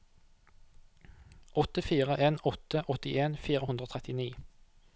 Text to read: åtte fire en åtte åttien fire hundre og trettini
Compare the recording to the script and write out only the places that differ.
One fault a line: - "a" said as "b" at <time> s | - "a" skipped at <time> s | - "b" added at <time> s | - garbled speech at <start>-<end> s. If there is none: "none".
none